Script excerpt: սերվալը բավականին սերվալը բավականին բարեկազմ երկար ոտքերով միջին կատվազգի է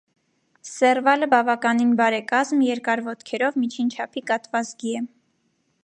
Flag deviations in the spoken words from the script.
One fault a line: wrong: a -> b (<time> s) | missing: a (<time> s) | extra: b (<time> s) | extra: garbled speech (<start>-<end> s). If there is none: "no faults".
missing: սերվալը բավականին (1.9 s)
extra: չափի (4.0 s)